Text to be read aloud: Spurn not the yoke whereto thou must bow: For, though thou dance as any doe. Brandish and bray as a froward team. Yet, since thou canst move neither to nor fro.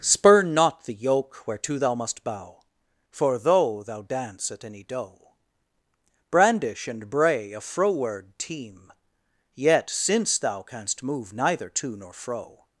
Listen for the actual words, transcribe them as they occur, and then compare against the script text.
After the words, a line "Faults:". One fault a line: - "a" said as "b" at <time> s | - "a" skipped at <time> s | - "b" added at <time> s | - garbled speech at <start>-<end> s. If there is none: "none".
Spurn not the yoke whereto thou must bow: For, though thou dance at any doe. Brandish and bray a froward team. Yet, since thou canst move neither to nor fro.
Faults:
- "as" said as "at" at 4.5 s
- "as" skipped at 7.5 s